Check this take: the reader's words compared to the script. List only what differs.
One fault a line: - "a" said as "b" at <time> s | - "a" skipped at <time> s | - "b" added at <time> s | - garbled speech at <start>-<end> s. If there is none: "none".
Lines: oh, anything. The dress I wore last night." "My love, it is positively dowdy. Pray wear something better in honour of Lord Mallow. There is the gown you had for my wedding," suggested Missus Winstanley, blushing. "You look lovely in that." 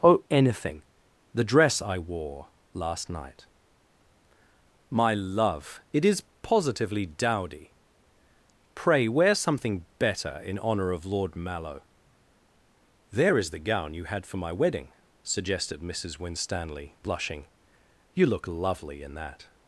none